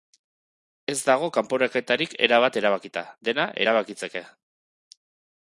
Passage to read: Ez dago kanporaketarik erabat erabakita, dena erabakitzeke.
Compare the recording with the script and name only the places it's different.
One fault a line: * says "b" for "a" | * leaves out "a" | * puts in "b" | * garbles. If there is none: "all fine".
all fine